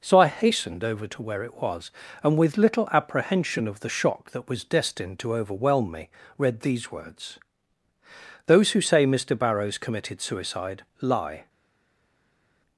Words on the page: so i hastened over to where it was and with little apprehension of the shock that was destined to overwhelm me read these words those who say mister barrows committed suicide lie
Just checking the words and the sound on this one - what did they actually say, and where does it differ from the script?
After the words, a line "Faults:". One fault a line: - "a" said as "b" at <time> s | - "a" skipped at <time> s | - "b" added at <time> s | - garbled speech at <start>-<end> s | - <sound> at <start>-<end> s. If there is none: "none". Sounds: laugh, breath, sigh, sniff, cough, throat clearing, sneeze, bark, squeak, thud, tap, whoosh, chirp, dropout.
so i hastened over to where it was and with little apprehension of the shock that was destined to overwhelm me read these words those who say mister barrows committed suicide lie
Faults:
none